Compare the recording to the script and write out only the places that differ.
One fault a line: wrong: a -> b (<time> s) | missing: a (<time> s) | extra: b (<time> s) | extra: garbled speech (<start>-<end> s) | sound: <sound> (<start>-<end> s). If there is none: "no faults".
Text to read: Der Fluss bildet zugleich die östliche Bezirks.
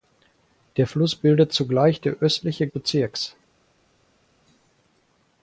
no faults